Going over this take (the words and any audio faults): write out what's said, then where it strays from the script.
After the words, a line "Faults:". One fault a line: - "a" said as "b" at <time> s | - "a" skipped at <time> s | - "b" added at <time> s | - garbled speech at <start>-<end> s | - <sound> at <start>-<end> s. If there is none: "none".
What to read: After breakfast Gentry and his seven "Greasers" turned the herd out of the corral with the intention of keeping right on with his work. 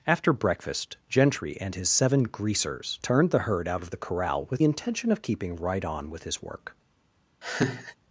After breakfast Gentry and his seven "Greasers" turned the herd out of the corral with intention of keeping right on with his work.
Faults:
- "the" skipped at 4.6 s
- laugh at 7.4-8.0 s